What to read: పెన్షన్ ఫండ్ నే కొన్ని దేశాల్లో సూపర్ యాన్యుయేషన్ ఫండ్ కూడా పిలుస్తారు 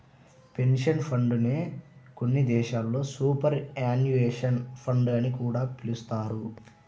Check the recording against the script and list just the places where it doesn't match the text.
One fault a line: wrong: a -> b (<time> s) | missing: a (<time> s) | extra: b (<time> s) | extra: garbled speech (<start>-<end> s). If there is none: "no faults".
extra: అని (5.2 s)